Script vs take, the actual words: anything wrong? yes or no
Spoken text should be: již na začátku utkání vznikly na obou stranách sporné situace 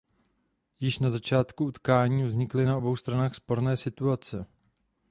no